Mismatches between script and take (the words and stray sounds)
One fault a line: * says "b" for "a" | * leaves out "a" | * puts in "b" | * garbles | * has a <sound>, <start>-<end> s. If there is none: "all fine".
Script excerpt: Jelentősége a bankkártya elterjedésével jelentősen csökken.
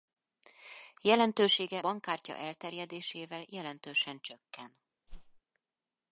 * leaves out "a"
* has a whoosh, 5.1-5.4 s